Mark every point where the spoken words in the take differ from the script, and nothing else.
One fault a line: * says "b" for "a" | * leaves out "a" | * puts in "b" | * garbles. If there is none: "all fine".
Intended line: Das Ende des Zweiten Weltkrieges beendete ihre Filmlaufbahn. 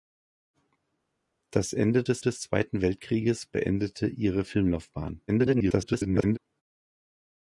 * puts in "des"
* garbles